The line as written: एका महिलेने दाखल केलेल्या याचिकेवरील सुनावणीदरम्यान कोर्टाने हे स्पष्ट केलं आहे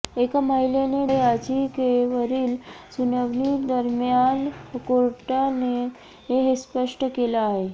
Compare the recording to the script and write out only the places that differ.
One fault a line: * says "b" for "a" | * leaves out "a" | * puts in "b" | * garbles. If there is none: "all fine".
* leaves out "दाखल केलेल्या"